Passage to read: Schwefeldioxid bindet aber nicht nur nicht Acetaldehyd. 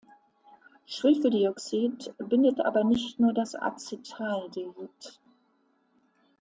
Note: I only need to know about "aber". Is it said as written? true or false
true